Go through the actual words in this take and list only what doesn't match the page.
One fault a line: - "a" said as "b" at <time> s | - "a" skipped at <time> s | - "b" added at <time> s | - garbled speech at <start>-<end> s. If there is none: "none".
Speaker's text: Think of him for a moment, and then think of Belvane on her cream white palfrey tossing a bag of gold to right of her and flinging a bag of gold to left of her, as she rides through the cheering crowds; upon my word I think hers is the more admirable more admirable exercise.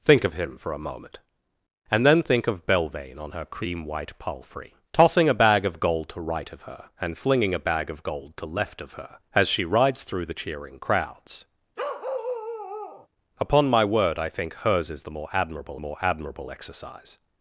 none